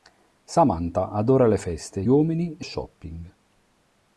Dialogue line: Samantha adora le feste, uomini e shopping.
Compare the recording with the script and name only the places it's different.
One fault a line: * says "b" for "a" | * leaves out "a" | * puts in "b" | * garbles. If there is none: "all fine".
all fine